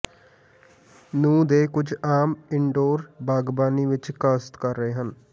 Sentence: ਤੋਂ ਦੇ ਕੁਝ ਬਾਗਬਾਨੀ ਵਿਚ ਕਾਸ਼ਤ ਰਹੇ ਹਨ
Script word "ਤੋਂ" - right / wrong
wrong